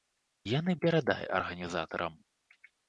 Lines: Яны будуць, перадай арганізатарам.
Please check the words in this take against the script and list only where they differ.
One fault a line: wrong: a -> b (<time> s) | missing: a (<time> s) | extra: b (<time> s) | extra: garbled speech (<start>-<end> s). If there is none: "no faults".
missing: будуць (0.8 s)